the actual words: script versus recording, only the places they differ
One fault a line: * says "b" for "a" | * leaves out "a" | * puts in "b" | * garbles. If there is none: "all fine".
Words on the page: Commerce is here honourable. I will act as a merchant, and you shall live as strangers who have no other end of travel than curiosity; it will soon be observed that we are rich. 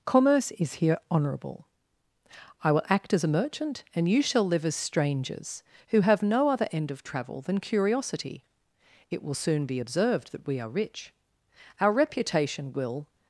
* puts in "Our reputation will"